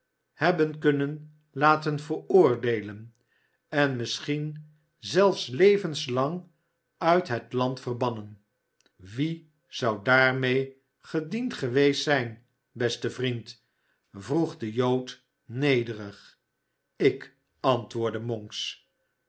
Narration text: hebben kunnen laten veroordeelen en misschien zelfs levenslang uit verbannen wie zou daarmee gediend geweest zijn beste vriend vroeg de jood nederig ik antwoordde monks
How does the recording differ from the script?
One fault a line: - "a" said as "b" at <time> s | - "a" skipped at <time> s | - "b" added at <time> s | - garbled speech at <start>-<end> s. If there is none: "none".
- "het land" added at 7.3 s